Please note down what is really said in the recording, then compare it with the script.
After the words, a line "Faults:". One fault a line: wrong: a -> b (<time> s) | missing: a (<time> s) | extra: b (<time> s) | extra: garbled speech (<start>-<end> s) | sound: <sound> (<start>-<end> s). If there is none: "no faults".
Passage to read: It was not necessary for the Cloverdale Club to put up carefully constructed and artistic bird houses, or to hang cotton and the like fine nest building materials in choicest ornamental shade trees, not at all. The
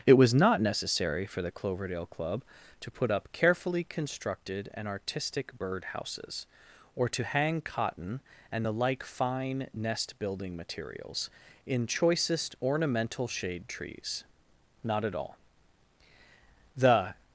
It was not necessary for the Cloverdale Club to put up carefully constructed and artistic bird houses, or to hang cotton and the like fine nest building materials in choicest ornamental shade trees, not at all. The
Faults:
no faults